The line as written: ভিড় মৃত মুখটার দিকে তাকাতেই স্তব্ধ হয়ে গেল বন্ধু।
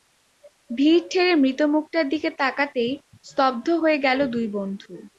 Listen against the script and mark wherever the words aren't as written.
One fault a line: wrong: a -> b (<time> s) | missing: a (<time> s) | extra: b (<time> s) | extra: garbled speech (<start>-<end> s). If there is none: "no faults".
extra: ঠেলে (1.1 s)
extra: দুই (4.3 s)